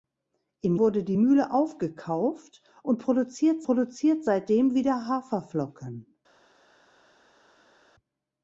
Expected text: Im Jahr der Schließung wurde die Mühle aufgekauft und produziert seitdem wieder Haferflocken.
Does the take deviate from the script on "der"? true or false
true